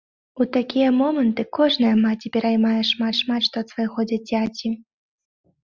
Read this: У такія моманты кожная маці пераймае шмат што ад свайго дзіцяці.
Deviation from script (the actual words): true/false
true